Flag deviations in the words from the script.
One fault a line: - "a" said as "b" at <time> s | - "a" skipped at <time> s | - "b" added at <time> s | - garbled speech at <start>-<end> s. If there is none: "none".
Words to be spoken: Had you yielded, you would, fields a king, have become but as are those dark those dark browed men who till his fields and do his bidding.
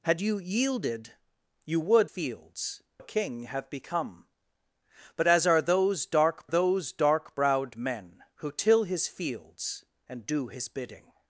none